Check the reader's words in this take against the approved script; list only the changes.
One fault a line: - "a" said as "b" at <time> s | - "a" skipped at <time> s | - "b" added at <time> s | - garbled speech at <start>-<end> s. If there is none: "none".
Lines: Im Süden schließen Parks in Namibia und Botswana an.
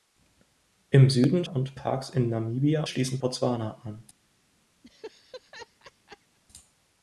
- "schließen" said as "und" at 1.4 s
- "und" said as "schließen" at 2.8 s